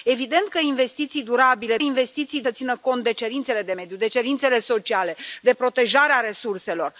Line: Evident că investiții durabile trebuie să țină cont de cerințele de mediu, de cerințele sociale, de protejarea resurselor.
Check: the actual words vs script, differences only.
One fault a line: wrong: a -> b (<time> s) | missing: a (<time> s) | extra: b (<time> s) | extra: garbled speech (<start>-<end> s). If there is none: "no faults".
wrong: trebuie -> investiții (1.8 s)